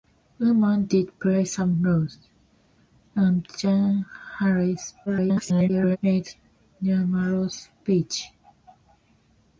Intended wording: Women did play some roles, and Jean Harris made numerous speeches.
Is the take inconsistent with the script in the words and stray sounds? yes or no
yes